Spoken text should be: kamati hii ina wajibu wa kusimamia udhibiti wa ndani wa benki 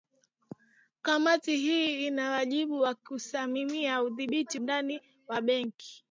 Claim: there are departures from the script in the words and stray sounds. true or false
true